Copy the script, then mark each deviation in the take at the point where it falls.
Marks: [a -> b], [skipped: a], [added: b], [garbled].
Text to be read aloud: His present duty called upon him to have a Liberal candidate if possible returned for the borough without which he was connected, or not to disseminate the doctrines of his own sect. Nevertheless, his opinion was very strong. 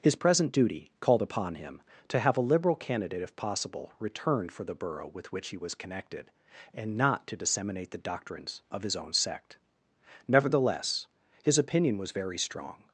His present duty called upon him to have a Liberal candidate if possible returned for the borough [without -> with] which he was connected, [or -> and] not to disseminate the doctrines of his own sect. Nevertheless, his opinion was very strong.